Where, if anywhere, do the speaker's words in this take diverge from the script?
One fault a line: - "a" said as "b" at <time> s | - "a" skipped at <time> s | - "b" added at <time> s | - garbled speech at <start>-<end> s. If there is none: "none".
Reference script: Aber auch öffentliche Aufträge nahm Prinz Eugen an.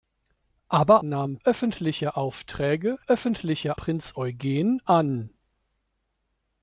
- "auch" said as "nahm" at 1.0 s
- "nahm" said as "öffentliche" at 3.1 s